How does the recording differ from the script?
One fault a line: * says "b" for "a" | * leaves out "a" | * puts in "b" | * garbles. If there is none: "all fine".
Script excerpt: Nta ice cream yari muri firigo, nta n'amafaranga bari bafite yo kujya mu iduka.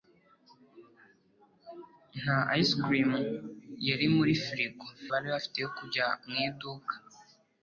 * leaves out "nta n'amafaranga"